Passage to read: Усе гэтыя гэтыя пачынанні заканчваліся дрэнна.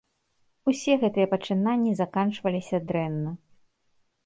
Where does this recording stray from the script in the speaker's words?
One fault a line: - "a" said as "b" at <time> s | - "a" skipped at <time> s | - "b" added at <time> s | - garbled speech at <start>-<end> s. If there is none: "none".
- "гэтыя" skipped at 1.3 s